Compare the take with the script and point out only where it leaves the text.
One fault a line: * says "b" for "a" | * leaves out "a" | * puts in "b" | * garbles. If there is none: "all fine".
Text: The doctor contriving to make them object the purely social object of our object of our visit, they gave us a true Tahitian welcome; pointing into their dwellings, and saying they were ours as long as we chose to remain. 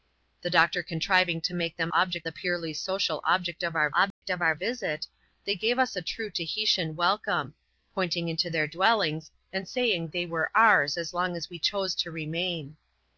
all fine